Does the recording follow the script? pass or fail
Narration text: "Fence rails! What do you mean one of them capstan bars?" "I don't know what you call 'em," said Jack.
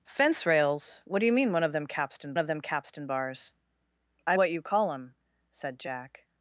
fail